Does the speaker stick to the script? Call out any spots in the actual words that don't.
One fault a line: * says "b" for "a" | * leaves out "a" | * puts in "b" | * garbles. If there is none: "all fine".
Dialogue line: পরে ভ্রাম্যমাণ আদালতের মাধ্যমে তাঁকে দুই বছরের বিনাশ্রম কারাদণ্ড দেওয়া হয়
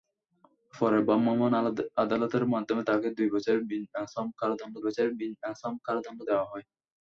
* puts in "বছরের বিনাশ্রম কারাদণ্ড"